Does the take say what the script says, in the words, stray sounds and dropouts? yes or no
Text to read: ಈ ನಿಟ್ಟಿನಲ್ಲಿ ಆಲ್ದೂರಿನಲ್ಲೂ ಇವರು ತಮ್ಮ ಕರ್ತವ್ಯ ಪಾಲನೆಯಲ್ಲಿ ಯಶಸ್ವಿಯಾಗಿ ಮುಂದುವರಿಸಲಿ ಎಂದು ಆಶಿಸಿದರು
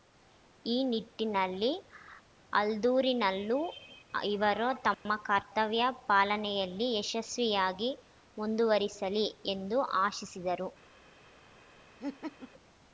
no